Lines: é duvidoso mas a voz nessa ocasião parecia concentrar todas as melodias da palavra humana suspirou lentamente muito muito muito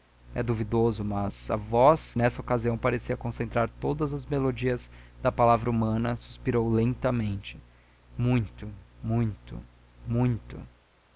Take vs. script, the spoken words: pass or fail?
pass